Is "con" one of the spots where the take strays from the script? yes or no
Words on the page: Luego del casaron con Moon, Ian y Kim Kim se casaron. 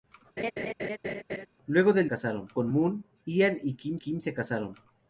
no